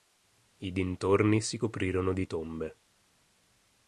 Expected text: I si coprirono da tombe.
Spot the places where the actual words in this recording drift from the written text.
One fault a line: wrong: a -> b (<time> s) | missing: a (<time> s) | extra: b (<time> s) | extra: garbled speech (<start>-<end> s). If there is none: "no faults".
extra: dintorni (0.7 s)
wrong: da -> di (2.1 s)